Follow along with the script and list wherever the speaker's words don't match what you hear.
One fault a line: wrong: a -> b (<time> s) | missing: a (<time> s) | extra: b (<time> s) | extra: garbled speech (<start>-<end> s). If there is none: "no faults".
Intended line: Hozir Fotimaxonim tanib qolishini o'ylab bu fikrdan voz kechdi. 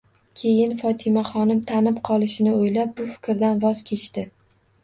wrong: Hozir -> Keyin (0.4 s)